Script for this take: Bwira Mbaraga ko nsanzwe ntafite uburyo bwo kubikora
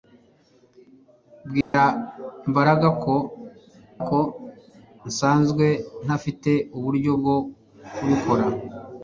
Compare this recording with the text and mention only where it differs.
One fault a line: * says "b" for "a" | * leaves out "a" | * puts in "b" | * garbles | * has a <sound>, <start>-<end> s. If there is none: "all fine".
* has a dropout, 1.6-1.7 s
* puts in "ko"